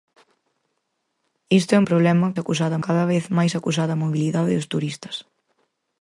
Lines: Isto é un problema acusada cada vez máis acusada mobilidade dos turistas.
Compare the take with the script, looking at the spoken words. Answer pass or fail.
pass